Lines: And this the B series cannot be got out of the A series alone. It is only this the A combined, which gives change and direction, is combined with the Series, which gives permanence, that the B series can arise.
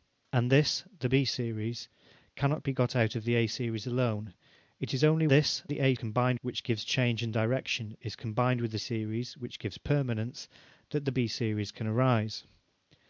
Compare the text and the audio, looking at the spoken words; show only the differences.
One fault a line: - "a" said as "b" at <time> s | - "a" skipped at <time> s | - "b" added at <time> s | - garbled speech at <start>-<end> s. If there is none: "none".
none